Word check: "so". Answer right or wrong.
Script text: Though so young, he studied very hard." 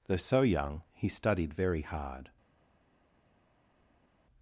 right